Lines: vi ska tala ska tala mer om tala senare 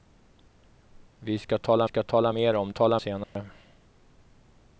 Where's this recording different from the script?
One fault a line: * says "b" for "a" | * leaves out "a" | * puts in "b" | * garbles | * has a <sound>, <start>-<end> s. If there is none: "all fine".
* has a dropout, 3.2-3.4 s